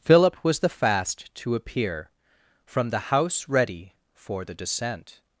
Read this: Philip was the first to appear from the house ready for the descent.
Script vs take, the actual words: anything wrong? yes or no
yes